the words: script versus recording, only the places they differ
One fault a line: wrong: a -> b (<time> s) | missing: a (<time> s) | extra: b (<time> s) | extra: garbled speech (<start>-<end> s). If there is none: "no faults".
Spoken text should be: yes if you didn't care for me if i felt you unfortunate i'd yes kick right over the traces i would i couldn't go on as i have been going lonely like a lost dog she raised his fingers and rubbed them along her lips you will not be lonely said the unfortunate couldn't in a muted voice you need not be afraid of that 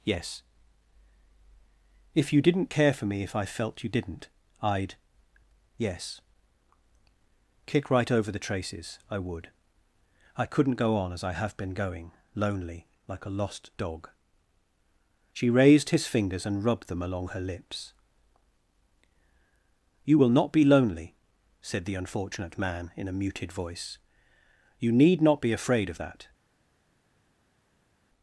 wrong: unfortunate -> didn't (3.9 s)
wrong: couldn't -> man (22.6 s)